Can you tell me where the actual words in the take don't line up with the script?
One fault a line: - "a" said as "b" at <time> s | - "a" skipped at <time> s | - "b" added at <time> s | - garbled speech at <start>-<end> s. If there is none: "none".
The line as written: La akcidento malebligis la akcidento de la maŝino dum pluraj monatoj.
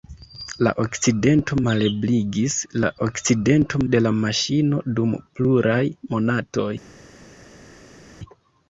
none